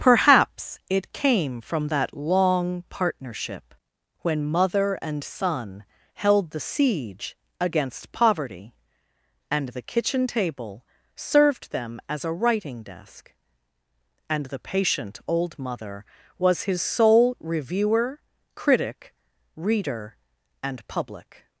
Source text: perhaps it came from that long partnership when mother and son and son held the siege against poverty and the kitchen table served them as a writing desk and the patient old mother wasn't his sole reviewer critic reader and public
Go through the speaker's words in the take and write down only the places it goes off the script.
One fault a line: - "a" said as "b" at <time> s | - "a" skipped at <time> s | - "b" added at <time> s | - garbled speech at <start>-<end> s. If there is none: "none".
- "and son" skipped at 5.8 s
- "wasn't" said as "was" at 16.4 s